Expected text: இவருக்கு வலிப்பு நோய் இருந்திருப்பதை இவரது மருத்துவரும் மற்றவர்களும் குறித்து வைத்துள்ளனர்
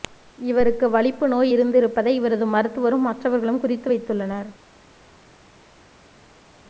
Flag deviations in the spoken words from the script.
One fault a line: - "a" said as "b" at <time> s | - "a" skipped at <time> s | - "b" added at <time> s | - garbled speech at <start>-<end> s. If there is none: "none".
none